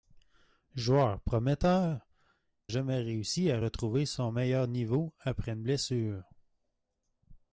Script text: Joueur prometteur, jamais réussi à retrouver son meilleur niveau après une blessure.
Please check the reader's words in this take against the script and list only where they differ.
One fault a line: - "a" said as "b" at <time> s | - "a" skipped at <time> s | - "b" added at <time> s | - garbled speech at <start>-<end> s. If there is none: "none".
none